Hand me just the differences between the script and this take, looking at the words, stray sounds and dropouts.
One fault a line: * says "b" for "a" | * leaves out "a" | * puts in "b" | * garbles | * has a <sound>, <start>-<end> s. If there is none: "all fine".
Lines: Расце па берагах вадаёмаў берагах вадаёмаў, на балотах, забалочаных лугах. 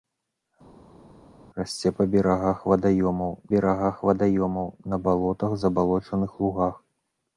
all fine